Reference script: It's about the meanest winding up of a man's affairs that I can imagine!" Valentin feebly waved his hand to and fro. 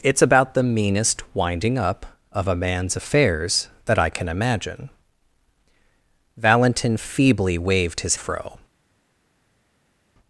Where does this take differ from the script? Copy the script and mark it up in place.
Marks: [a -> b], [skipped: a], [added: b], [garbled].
It's about the meanest winding up of a man's affairs that I can imagine!" Valentin feebly waved his [skipped: hand to and] fro.